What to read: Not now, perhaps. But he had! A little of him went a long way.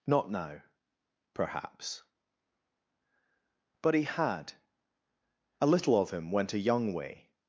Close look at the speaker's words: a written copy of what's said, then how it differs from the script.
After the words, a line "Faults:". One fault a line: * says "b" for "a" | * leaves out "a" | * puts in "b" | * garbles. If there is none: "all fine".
Not now, perhaps. But he had! A little of him went a young way.
Faults:
* says "young" for "long"